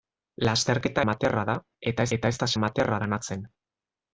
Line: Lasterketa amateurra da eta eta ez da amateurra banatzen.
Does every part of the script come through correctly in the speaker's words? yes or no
yes